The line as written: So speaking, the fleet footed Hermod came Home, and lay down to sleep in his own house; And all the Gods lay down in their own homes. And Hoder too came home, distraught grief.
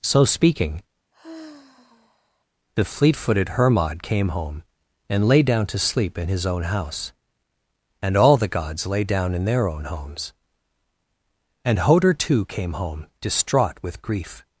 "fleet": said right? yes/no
yes